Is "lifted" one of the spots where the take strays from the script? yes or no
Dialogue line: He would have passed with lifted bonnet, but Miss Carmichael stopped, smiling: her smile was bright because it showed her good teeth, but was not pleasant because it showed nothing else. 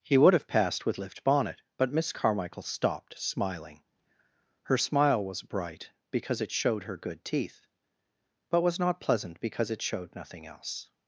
yes